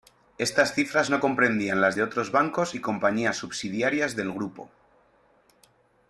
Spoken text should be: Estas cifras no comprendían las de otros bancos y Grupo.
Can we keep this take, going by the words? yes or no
no